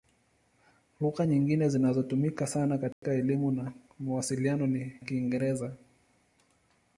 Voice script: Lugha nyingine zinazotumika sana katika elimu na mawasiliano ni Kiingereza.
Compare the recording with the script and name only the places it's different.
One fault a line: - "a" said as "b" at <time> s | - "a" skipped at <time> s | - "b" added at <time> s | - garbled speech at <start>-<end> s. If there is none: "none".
none